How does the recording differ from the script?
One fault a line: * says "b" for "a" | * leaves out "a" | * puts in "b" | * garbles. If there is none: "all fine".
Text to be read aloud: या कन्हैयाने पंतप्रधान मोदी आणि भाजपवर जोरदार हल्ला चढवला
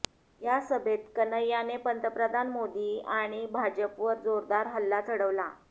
* puts in "सभेत"